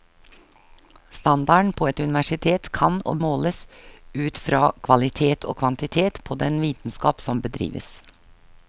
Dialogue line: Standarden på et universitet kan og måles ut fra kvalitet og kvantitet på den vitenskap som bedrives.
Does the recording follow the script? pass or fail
pass